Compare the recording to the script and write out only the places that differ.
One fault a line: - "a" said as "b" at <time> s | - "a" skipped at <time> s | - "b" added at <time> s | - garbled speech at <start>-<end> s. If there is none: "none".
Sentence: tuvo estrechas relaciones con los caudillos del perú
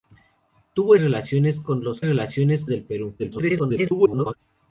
- "estrechas" skipped at 0.9 s
- "caudillos" said as "relaciones" at 2.0 s
- garbled speech at 3.2-4.4 s